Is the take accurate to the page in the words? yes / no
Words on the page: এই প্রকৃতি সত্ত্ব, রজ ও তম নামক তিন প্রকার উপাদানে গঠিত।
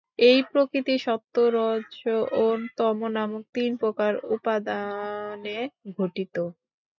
yes